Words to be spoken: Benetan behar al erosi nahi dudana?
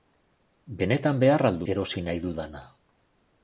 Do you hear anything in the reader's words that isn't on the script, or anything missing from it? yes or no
no